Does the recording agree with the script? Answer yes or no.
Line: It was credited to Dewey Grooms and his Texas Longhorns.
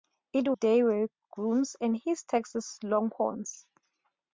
no